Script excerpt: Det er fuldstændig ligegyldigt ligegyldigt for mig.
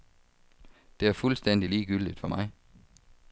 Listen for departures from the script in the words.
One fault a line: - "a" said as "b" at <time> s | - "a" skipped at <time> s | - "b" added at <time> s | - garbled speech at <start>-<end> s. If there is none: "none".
- "ligegyldigt" skipped at 2.2 s